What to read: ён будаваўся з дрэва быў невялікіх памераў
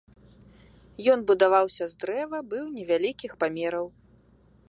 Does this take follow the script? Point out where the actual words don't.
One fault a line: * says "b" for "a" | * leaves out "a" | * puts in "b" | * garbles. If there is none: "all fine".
all fine